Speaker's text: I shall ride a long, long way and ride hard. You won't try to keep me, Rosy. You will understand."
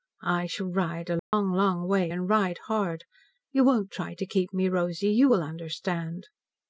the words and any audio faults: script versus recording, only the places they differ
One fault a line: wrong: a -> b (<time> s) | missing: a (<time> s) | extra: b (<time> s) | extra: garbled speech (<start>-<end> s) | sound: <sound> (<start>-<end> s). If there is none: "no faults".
sound: dropout (1.2-1.3 s)